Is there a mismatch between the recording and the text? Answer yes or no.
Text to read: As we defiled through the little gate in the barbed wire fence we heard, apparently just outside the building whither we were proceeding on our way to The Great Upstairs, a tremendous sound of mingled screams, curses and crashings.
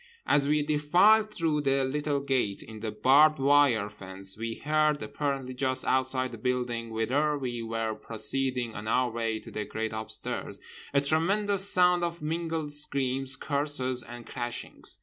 no